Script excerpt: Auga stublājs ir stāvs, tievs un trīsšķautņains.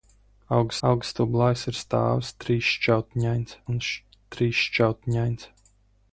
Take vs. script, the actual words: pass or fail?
fail